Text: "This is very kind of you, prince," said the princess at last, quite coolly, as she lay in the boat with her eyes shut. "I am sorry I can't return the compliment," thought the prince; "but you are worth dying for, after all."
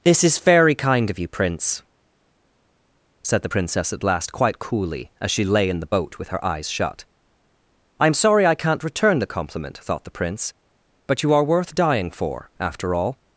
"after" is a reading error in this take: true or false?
false